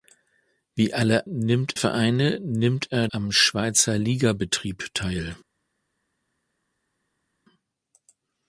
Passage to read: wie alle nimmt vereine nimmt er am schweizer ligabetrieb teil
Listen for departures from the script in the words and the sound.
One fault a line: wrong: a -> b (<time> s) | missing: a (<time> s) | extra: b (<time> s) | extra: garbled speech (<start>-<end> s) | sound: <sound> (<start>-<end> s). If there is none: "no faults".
no faults